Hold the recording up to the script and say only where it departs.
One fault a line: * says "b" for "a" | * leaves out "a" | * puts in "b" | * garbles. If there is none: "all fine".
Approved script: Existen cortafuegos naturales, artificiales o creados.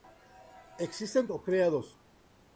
* leaves out "cortafuegos naturales artificiales"